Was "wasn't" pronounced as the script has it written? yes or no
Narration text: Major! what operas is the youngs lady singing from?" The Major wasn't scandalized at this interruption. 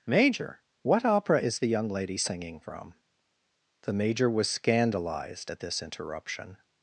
no